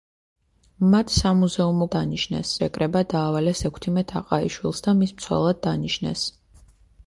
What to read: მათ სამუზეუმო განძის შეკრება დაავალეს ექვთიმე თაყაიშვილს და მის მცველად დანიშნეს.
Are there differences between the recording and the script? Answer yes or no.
yes